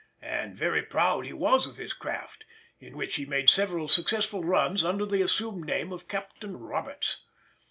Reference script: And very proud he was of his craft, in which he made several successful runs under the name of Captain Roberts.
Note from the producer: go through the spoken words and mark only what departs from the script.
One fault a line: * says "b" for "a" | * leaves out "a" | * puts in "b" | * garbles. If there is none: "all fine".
* puts in "assumed"